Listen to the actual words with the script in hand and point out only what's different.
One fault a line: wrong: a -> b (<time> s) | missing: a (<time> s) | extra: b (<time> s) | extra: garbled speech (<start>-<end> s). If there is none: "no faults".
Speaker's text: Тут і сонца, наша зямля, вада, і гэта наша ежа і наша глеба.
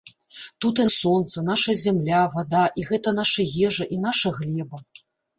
no faults